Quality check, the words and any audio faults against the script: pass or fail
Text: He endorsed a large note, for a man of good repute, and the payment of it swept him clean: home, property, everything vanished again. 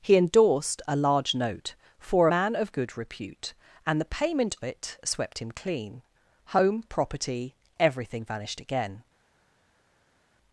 fail